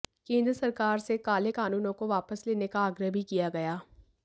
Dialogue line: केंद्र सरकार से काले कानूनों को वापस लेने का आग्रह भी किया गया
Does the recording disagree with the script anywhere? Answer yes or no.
no